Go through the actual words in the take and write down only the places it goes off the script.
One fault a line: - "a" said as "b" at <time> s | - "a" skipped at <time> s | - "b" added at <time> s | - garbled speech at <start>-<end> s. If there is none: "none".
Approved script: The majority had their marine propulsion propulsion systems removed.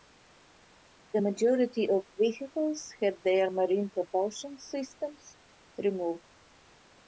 - "of vehicles" added at 1.9 s
- "propulsion" skipped at 4.6 s